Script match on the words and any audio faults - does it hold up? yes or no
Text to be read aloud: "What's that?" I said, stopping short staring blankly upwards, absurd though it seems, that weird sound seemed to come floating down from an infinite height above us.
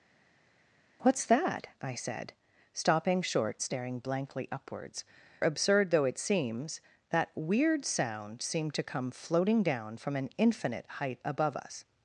yes